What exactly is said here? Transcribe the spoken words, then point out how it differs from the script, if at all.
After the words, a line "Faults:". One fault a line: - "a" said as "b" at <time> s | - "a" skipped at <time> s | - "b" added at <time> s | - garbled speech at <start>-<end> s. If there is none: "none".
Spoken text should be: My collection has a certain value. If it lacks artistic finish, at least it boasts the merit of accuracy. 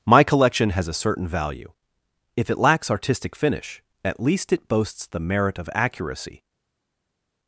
My collection has a certain value. If it lacks artistic finish, at least it boasts the merit of accuracy.
Faults:
none